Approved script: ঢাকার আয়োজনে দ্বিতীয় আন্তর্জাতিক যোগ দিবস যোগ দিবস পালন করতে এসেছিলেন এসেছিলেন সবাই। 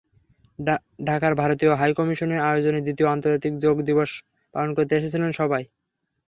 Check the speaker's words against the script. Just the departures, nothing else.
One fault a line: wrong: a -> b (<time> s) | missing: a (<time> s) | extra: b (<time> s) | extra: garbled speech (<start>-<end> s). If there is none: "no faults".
extra: ভারতীয় হাইকমিশনের (1.4 s)
missing: যোগ দিবস (4.1 s)
missing: এসেছিলেন (5.3 s)